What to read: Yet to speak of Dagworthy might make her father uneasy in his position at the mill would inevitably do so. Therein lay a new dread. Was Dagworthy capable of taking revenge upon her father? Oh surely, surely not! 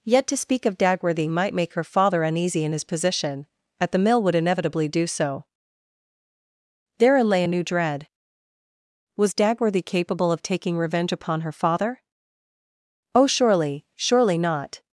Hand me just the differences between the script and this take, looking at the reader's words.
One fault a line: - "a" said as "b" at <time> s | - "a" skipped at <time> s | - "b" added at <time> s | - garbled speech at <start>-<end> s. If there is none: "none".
none